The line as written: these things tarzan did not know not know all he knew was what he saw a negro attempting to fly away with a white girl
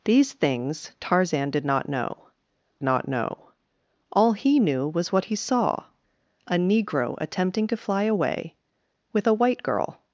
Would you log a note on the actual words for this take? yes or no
no